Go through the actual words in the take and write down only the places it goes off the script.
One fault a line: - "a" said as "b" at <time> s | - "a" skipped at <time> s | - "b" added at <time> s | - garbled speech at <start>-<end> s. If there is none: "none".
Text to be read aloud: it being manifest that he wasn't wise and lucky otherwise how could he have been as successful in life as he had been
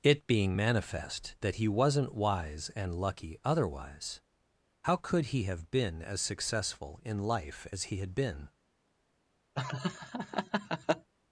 none